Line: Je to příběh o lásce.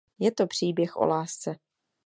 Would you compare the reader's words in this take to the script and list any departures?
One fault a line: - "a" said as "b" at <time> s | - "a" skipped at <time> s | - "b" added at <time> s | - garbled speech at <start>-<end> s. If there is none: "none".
none